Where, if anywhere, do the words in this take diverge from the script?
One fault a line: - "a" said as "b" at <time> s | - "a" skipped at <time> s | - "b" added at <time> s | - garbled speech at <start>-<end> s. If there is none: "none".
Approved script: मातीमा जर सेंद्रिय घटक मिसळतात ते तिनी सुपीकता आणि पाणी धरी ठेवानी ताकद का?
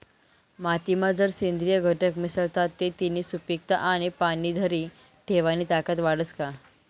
- "वाढस" added at 6.0 s